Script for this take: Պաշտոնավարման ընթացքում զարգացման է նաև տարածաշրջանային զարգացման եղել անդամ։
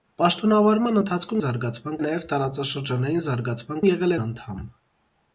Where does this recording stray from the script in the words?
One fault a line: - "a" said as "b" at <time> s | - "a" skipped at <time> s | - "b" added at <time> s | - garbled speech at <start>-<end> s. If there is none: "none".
none